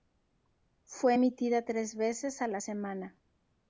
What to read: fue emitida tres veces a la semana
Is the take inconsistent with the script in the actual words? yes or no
no